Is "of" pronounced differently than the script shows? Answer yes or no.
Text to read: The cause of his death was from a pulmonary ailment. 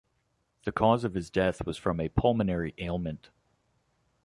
no